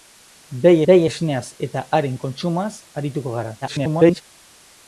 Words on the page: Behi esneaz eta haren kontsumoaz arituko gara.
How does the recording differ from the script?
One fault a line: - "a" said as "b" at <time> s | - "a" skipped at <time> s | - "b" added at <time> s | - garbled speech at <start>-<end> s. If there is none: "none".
- "behi" added at 0.9 s
- garbled speech at 3.6-4.2 s